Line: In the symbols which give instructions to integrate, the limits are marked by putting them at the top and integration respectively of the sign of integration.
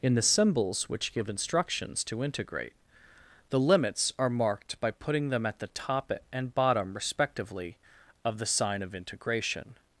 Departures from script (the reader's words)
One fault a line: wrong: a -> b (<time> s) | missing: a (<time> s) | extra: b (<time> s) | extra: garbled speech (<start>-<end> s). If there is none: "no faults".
wrong: integration -> bottom (6.5 s)